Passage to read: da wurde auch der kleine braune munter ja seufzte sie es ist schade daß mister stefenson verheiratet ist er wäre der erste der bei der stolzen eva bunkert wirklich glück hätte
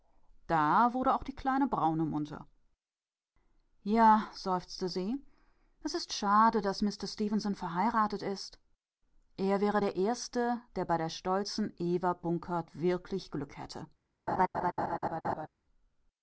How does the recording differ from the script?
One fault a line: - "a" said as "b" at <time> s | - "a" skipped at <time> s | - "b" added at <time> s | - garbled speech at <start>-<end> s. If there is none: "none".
- "der" said as "die" at 1.2 s